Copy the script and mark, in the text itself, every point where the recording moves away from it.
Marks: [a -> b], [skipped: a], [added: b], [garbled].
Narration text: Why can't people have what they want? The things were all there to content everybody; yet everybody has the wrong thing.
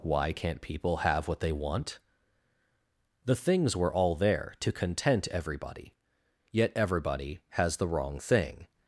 Why can't people have what they want? The things were all there to content everybody; yet everybody has the wrong thing.